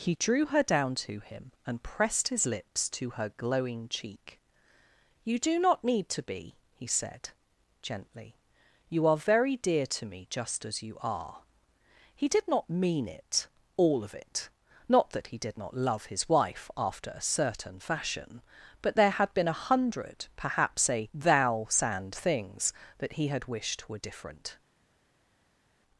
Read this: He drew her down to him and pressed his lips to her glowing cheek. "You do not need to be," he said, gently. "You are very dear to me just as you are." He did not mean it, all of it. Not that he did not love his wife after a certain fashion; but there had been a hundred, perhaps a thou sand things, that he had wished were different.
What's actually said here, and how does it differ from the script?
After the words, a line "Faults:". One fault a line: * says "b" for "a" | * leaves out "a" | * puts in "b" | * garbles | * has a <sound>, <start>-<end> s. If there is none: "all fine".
He drew her down to him and pressed his lips to her glowing cheek. "You do not need to be," he said, gently. "You are very dear to me just as you are." He did not mean it, all of it. Not that he did not love his wife after a certain fashion; but there had been a hundred, perhaps a thou sand things, that he had wished were different.
Faults:
all fine